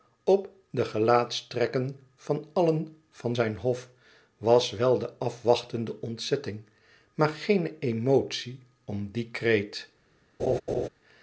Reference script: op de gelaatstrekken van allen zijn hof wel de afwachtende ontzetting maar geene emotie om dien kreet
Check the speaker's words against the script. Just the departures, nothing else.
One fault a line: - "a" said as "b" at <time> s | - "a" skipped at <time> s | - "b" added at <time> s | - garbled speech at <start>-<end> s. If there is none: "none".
- "van" added at 3.1 s
- "was" added at 4.4 s